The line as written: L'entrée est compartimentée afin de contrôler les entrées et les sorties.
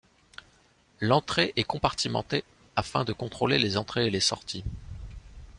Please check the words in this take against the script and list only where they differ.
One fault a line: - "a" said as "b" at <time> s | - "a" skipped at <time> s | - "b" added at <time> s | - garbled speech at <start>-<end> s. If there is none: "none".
none